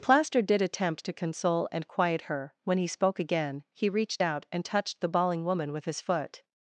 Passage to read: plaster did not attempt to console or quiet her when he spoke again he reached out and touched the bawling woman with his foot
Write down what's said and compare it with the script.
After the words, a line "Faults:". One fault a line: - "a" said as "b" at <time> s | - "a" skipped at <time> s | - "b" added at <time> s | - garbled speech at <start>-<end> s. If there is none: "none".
plaster did attempt to console and quiet her when he spoke again he reached out and touched the bawling woman with his foot
Faults:
- "not" skipped at 0.6 s
- "or" said as "and" at 1.7 s